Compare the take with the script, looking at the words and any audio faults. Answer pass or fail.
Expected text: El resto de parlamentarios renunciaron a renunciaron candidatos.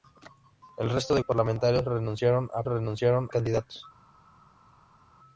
pass